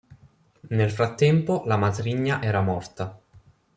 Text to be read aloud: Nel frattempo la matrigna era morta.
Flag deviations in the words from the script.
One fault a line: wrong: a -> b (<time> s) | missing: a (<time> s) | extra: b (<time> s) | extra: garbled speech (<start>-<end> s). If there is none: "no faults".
no faults